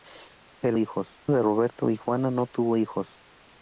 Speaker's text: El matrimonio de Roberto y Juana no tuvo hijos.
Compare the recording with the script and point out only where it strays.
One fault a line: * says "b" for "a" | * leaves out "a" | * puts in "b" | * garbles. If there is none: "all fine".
* says "hijos" for "matrimonio"